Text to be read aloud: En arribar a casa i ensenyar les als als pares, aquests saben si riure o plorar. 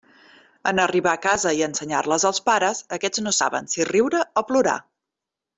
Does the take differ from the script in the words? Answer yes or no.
yes